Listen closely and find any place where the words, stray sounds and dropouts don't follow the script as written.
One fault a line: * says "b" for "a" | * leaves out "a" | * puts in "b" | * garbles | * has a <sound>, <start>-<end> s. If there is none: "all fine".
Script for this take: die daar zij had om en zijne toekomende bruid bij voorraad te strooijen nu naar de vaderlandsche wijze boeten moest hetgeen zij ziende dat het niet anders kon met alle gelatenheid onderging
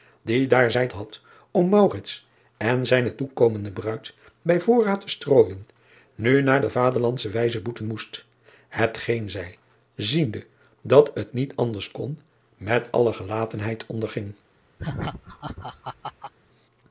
* has a laugh, 14.8-16.3 s